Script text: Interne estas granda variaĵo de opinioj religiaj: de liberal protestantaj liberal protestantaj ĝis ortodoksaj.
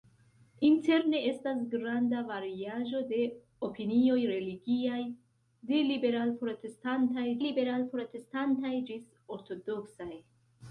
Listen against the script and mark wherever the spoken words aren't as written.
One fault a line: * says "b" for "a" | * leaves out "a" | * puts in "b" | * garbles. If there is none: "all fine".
all fine